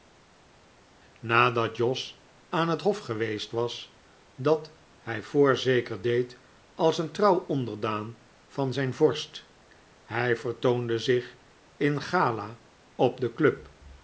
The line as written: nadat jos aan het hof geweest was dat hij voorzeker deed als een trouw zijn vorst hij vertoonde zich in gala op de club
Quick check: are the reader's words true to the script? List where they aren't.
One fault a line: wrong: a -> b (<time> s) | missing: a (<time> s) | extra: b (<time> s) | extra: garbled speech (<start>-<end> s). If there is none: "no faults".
extra: onderdaan van (7.5 s)